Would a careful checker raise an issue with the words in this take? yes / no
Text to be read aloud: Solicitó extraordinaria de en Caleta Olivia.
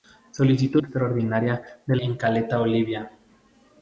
no